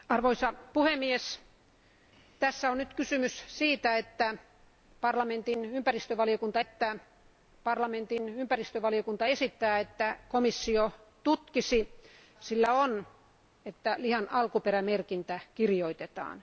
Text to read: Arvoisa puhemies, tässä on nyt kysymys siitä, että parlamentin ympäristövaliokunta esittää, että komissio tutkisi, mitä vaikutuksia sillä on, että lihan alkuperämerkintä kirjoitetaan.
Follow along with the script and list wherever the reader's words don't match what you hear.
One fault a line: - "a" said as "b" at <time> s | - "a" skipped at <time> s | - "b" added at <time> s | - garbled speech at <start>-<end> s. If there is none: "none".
- "että parlamentin ympäristövaliokunta" added at 6.6 s
- "mitä vaikutuksia" skipped at 12.0 s